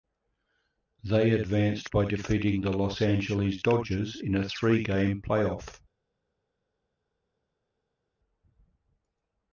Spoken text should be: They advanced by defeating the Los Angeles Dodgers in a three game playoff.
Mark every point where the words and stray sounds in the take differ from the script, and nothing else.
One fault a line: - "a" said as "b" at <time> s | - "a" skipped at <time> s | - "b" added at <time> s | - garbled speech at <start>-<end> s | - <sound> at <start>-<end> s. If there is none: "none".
none